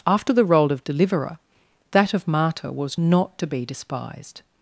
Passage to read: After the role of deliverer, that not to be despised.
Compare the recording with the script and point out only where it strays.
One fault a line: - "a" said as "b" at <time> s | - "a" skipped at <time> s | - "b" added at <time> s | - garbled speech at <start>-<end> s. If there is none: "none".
- "of martyr was" added at 2.1 s